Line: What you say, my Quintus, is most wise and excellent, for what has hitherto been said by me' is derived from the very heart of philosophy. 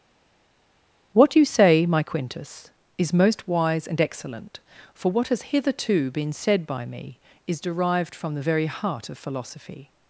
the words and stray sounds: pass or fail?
pass